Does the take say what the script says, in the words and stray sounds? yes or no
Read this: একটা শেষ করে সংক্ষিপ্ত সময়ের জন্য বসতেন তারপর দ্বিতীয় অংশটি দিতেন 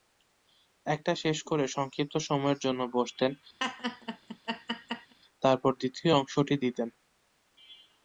no